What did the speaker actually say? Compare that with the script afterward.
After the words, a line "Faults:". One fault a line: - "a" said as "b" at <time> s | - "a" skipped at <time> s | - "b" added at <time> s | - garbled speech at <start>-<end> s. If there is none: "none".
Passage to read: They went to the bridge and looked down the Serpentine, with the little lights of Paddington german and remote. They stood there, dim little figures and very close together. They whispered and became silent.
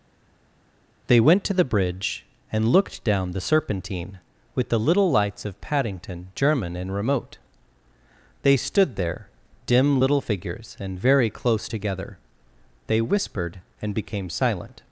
They went to the bridge and looked down the Serpentine, with the little lights of Paddington german and remote. They stood there, dim little figures and very close together. They whispered and became silent.
Faults:
none